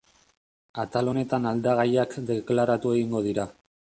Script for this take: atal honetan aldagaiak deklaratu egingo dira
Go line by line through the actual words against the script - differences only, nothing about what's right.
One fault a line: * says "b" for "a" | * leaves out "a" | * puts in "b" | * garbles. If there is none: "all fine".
all fine